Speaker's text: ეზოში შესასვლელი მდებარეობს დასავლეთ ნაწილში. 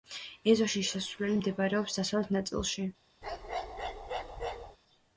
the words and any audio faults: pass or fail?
fail